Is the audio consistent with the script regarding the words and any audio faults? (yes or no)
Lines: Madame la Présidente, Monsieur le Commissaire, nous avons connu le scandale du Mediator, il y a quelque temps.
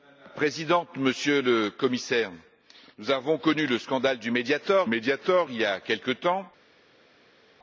no